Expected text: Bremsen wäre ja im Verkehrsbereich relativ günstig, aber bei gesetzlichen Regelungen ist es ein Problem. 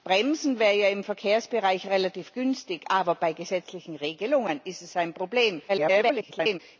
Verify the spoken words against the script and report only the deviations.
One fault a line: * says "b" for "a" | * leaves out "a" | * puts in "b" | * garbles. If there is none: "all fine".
* garbles